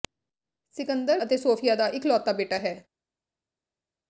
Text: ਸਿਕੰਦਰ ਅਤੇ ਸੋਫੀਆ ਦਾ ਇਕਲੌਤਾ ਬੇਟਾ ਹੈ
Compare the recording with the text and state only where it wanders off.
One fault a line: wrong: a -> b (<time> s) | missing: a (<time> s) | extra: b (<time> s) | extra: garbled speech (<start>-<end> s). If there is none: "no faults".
no faults